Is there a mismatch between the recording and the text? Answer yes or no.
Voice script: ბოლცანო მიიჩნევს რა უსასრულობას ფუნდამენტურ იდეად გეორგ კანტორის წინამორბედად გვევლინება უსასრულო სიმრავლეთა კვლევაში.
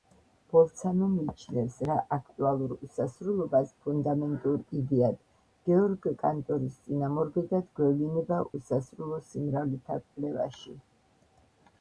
yes